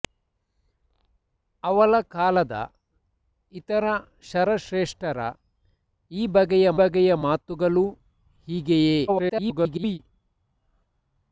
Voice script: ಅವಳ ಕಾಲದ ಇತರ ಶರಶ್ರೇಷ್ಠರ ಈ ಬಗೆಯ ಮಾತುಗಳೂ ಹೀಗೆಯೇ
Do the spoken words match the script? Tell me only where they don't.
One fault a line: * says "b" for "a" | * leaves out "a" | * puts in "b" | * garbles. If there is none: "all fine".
* puts in "ಬಗೆಯ"
* garbles